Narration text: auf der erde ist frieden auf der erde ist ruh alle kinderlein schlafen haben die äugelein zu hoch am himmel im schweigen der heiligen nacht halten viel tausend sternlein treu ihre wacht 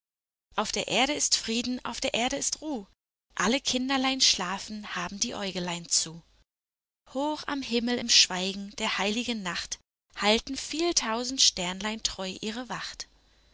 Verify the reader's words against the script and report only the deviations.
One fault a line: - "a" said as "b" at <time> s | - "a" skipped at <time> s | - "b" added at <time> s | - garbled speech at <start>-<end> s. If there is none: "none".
none